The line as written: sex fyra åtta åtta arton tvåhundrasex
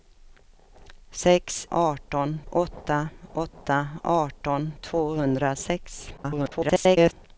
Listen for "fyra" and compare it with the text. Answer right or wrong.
wrong